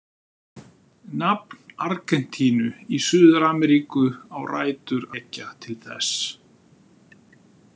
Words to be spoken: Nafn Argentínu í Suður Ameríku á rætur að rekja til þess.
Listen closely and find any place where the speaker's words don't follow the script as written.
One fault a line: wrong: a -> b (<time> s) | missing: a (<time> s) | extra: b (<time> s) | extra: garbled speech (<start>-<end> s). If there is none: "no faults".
missing: að (5.1 s)